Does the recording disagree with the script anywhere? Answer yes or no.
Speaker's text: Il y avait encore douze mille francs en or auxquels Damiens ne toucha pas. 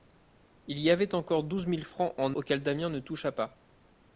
yes